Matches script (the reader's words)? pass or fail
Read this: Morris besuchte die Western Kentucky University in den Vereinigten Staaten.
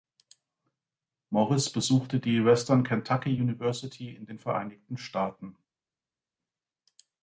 pass